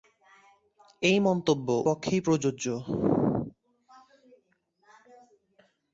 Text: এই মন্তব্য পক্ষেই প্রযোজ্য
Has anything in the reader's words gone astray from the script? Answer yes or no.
no